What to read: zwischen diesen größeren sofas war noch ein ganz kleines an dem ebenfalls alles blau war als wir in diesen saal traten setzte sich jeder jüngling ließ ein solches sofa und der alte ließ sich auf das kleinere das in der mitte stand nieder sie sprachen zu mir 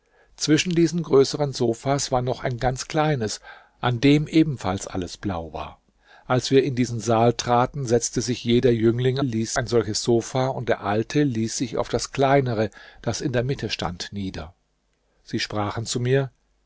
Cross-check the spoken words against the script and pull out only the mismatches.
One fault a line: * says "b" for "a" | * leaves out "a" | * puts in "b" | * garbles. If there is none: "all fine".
all fine